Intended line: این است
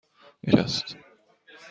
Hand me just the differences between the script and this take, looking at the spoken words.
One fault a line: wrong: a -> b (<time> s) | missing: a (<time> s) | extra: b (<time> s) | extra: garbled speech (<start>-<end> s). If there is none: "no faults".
no faults